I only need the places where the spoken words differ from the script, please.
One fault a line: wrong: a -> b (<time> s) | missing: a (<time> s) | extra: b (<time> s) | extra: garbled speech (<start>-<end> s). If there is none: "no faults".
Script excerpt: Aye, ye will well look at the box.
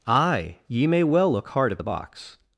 wrong: will -> may (0.9 s)
extra: hard (1.5 s)